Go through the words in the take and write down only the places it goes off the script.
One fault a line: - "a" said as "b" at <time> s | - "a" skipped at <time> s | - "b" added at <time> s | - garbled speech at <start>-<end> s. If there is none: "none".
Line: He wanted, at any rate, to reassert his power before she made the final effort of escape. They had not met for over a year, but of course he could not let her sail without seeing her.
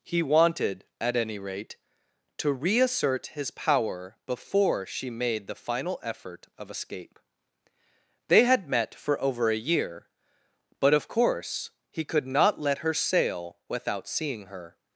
- "not" skipped at 8.7 s